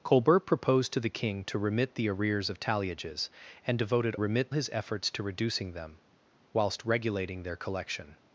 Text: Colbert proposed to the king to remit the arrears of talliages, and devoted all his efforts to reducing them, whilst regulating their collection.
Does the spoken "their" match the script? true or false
true